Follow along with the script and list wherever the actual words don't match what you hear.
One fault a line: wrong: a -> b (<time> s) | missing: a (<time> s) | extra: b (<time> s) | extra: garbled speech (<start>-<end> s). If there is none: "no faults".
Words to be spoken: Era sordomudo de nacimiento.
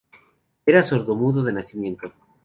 no faults